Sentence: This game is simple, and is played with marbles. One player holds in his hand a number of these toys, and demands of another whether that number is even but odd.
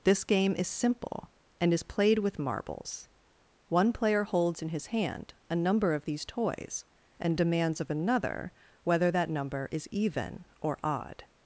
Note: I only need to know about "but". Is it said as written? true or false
false